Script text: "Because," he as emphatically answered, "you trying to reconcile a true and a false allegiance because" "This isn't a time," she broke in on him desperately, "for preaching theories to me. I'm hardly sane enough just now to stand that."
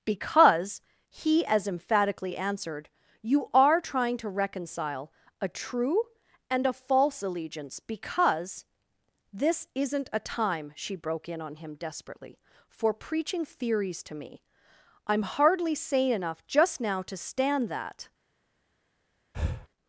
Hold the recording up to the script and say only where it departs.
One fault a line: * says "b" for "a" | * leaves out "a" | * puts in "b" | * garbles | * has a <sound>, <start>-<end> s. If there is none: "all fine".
* puts in "are"
* has a breath, 19.3-19.7 s